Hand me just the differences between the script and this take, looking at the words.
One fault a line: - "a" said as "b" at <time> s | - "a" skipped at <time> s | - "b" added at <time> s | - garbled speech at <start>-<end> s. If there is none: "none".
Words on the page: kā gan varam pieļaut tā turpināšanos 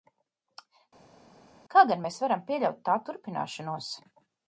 - "mēs" added at 2.0 s